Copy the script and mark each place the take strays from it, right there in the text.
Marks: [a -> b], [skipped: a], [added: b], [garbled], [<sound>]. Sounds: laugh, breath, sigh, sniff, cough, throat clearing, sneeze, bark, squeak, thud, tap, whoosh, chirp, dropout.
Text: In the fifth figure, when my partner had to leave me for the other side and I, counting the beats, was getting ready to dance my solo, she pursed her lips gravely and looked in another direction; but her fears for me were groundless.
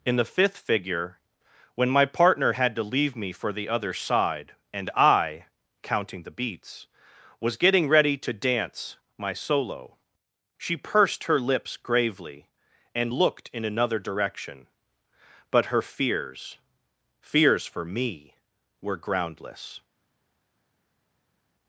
In the fifth figure, when my partner had to leave me for the other side and I, counting the beats, was getting ready to dance my solo, she pursed her lips gravely and looked in another direction; but her fears [added: fears] for me were groundless.